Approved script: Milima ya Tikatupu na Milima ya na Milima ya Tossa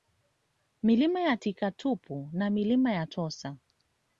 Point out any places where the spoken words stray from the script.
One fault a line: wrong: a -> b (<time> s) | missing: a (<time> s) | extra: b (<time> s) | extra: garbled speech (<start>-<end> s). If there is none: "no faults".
missing: na Milima ya (3.1 s)